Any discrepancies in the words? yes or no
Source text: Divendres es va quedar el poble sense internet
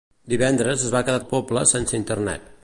no